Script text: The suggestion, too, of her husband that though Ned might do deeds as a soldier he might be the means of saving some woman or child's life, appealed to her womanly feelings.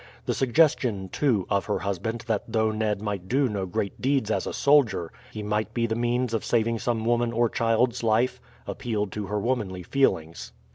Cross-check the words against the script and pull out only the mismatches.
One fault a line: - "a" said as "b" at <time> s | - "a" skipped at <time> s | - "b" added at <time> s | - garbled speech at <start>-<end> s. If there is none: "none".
- "no great" added at 3.5 s